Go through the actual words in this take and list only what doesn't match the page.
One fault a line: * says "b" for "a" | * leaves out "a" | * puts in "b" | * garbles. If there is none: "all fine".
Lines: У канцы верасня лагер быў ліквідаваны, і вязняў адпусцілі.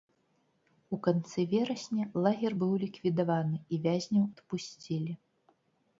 all fine